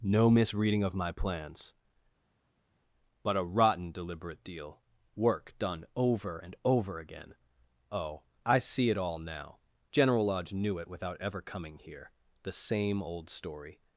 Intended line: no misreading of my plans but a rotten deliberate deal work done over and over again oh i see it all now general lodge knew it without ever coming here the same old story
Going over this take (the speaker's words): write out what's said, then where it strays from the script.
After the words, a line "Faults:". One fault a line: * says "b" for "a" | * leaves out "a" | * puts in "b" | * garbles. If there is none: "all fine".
no misreading of my plans but a rotten deliberate deal work done over and over again oh i see it all now general lodge knew it without ever coming here the same old story
Faults:
all fine